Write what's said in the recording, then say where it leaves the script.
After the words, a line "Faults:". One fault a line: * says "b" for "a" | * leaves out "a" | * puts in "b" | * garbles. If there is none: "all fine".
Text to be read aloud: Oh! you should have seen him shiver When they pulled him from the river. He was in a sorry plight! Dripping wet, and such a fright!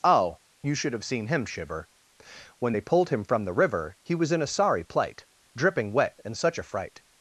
Oh! you should have seen him shiver When they pulled him from the river. He was in a sorry plight! Dripping wet, and such a fright!
Faults:
all fine